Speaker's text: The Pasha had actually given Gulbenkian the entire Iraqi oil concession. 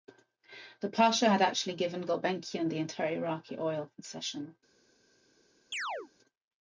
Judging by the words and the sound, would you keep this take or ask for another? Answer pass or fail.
fail